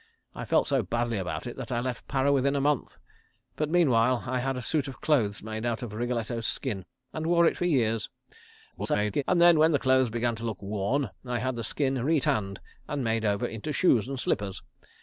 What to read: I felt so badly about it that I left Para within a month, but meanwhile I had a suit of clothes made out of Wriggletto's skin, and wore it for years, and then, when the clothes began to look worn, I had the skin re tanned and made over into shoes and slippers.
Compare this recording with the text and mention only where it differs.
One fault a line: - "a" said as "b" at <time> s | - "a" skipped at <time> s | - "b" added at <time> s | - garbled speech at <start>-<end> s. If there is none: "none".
- garbled speech at 8.7-9.2 s